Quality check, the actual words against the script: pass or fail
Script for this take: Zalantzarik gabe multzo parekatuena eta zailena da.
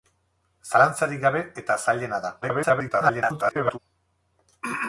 fail